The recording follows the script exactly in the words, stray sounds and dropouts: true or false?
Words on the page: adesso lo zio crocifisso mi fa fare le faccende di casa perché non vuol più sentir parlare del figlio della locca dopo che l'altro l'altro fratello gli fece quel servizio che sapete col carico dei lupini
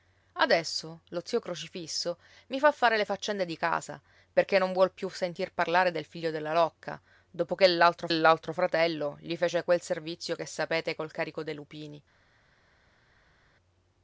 true